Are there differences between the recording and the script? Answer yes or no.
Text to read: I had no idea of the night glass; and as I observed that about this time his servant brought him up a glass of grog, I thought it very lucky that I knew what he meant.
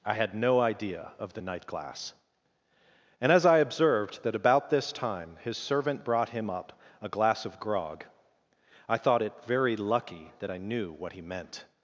no